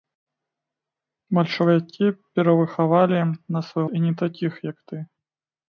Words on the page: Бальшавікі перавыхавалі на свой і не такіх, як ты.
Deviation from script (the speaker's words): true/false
false